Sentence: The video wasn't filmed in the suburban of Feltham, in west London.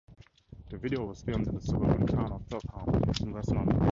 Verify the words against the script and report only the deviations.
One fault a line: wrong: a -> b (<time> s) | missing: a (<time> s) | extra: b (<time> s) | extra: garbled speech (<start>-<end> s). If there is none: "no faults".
wrong: wasn't -> was (1.0 s)
extra: town (2.0 s)